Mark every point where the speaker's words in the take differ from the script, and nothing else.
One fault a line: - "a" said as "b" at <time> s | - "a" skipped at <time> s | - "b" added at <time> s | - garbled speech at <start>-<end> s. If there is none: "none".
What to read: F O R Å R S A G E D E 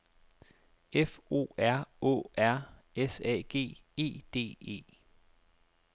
none